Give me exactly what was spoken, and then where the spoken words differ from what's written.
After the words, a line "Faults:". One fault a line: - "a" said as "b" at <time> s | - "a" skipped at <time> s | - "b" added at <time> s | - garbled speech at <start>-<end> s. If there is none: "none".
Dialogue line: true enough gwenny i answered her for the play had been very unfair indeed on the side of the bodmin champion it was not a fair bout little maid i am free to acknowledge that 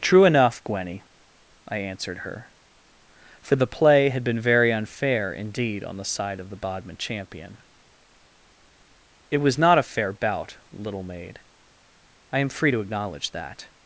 true enough gwenny i answered her for the play had been very unfair indeed on the side of the bodmin champion it was not a fair bout little maid i am free to acknowledge that
Faults:
none